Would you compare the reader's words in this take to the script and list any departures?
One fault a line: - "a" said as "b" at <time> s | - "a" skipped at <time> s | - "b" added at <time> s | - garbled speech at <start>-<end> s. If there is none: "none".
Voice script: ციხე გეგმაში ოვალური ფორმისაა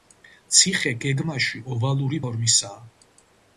none